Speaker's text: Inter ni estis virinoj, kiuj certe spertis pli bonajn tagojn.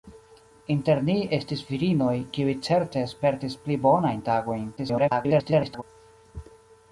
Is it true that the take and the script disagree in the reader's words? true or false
true